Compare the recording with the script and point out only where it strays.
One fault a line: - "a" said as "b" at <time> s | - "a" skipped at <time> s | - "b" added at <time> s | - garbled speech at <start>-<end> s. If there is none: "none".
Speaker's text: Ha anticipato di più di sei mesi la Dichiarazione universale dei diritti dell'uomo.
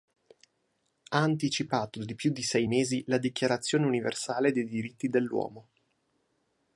none